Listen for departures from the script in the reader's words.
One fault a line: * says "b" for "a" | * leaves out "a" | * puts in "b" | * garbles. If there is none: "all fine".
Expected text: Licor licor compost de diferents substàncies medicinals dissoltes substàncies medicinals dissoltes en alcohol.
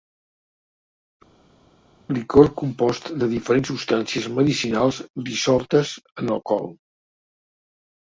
* leaves out "licor"
* leaves out "substàncies medicinals dissoltes"